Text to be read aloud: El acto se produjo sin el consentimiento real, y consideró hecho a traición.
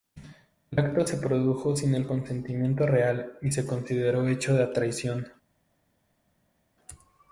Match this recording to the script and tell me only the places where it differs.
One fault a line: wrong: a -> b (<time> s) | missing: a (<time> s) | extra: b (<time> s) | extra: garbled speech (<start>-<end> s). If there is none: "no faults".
extra: se (3.5 s)